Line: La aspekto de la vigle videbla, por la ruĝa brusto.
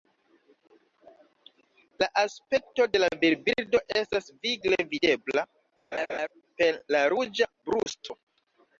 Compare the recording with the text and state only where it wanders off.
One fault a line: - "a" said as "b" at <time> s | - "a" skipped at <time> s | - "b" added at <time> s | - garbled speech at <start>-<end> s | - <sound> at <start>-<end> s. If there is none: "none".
- "virbirdo estas" added at 3.2 s
- laugh at 5.9-6.3 s
- "por" said as "per" at 6.6 s
- dropout at 7.8-7.9 s